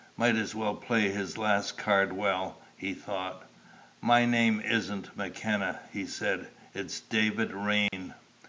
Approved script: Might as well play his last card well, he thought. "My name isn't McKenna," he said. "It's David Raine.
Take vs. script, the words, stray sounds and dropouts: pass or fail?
fail